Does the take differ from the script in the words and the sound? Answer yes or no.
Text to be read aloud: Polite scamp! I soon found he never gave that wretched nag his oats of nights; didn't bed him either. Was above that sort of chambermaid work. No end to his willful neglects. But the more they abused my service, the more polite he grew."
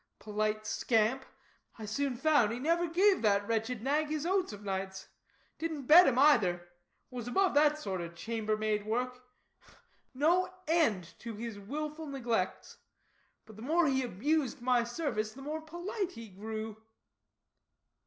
yes